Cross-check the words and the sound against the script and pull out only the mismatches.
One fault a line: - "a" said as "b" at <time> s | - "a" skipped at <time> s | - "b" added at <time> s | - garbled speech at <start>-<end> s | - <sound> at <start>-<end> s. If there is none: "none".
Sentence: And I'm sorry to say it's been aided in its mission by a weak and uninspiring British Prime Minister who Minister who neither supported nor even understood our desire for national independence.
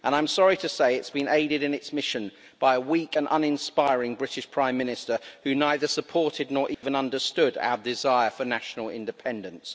- "Minister who" skipped at 5.5 s
- dropout at 6.7-6.8 s